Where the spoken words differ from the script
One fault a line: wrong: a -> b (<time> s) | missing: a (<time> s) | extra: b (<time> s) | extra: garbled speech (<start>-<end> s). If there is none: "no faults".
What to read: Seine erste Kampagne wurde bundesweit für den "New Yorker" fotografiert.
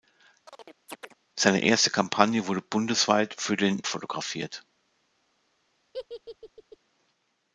missing: New Yorker (3.8 s)